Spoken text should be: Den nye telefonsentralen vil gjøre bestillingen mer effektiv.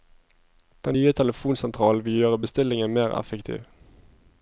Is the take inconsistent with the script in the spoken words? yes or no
no